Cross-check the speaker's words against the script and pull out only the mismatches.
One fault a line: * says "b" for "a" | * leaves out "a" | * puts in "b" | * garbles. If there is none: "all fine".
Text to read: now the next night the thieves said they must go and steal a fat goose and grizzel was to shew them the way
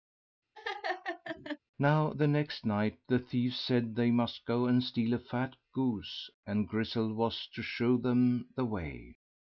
all fine